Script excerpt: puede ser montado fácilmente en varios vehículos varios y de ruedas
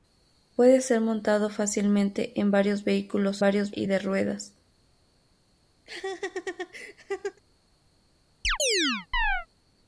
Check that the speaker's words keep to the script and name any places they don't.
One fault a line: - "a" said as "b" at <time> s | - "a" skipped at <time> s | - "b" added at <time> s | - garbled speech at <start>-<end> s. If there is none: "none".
none